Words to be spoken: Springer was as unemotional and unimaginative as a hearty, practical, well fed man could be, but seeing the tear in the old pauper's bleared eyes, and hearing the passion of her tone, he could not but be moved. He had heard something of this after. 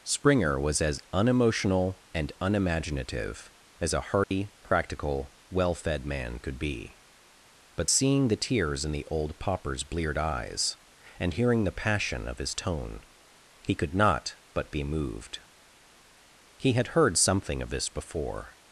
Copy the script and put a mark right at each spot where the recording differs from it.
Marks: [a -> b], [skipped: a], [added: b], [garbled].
Springer was as unemotional and unimaginative as a hearty, practical, well fed man could be, but seeing the [tear -> tears] in the old pauper's bleared eyes, and hearing the passion of [her -> his] tone, he could not but be moved. He had heard something of this [after. -> before]